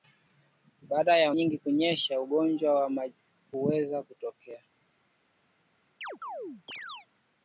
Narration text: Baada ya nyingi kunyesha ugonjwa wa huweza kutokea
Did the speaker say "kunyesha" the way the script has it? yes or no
yes